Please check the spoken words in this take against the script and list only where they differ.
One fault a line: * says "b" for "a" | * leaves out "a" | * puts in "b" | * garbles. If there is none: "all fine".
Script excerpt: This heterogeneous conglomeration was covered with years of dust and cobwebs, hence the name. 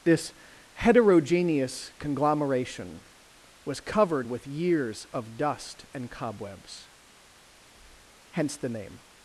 all fine